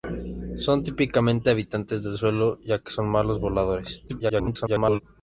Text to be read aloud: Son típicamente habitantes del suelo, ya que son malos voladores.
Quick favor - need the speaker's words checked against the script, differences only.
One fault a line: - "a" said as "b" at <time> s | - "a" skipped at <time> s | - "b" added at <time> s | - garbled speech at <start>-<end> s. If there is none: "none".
- garbled speech at 4.1-5.0 s